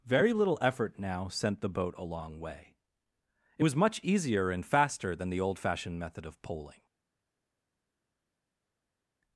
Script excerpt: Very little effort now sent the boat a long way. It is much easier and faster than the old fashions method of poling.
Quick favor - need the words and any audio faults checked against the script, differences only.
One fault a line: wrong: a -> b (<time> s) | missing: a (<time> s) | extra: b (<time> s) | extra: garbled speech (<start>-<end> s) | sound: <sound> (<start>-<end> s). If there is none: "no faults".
wrong: is -> was (3.6 s)
wrong: fashions -> fashioned (5.6 s)